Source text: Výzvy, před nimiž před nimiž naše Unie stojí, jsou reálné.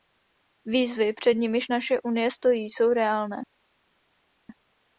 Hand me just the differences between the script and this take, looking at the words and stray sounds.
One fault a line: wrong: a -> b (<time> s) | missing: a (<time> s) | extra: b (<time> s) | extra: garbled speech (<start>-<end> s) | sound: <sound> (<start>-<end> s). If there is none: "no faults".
missing: před nimiž (1.7 s)